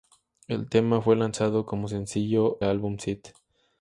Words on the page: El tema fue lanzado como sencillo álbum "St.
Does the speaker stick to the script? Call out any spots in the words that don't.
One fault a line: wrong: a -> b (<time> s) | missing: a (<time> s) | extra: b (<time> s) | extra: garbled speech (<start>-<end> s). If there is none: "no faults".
no faults